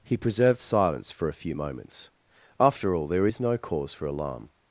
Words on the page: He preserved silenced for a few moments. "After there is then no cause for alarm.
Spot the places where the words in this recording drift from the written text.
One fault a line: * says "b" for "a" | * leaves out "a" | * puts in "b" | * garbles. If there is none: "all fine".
* says "silence" for "silenced"
* puts in "all"
* leaves out "then"